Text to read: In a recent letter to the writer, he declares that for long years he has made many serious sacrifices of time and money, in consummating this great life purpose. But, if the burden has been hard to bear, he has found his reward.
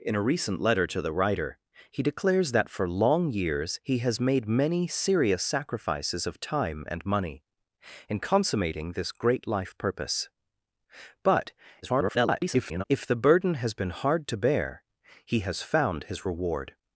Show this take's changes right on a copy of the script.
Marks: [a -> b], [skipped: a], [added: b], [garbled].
In a recent letter to the writer, he declares that for long years he has made many serious sacrifices of time and money, in consummating this great life purpose. But, [garbled] if the burden has been hard to bear, he has found his reward.